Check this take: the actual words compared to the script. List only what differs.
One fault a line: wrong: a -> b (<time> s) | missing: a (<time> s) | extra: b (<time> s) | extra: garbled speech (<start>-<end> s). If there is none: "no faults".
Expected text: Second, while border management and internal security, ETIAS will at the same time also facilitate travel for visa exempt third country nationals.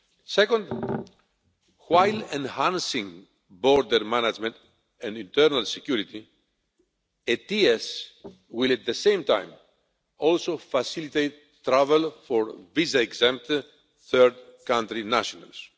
extra: enhancing (2.3 s)